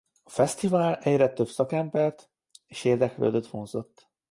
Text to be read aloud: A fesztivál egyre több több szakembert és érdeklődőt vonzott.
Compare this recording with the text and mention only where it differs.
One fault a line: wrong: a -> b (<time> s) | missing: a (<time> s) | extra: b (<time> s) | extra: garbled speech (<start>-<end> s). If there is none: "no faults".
missing: több (1.5 s)